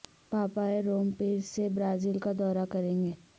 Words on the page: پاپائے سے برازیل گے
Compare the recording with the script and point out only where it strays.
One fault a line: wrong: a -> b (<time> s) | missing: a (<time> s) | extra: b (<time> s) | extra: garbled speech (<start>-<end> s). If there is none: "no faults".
extra: روم پیر (0.8 s)
extra: کا دورہ کریں (2.2 s)